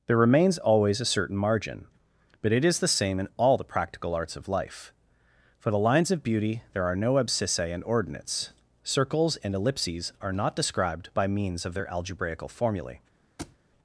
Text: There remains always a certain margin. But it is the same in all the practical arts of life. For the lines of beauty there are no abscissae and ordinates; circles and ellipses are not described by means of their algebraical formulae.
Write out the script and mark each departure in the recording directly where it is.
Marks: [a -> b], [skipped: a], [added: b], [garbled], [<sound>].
There remains always a certain margin. But it is the same in all the practical arts of life. For the lines of beauty there are no abscissae and ordinates; circles and ellipses are not described by means of their algebraical formulae. [thud]